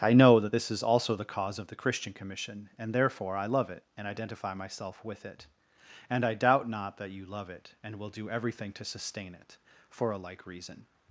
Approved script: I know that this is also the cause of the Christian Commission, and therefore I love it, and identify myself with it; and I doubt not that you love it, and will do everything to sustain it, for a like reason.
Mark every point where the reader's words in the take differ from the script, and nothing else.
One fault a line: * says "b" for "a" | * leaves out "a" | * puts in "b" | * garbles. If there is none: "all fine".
all fine